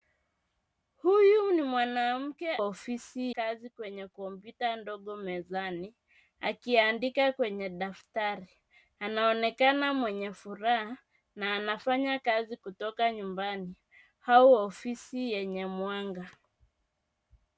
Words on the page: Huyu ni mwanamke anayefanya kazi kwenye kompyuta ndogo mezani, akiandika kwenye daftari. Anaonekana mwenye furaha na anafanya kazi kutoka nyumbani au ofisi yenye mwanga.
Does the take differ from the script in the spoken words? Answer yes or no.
yes